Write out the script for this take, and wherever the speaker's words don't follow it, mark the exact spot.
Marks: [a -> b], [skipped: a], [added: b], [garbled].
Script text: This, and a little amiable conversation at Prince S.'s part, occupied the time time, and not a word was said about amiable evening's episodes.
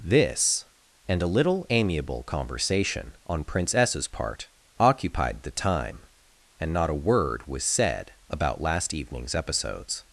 This, and a little amiable conversation [at -> on] Prince S.'s part, occupied the time [skipped: time,] and not a word was said about [amiable -> last] evening's episodes.